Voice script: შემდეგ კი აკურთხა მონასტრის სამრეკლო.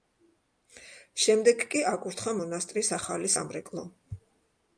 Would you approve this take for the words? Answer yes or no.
no